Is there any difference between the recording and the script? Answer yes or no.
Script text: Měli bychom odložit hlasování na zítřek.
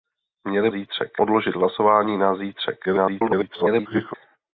yes